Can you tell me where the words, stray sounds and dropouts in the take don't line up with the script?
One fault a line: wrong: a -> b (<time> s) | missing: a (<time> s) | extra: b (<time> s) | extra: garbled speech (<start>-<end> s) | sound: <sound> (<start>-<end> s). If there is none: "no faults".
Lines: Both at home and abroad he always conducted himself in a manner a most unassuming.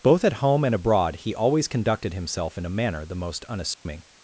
wrong: a -> the (3.1 s)
sound: dropout (3.7-3.9 s)